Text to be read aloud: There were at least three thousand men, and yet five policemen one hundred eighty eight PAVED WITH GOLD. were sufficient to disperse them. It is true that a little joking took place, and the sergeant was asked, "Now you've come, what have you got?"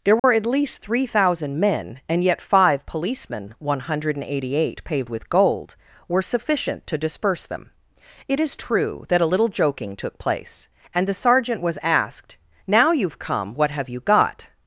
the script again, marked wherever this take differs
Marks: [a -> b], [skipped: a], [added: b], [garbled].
There were at least three thousand men, and yet five policemen one hundred eighty eight PAVED WITH GOLD. were sufficient to disperse them. It is true that a little joking took place, and the sergeant was asked, "Now you've come, what have you got?"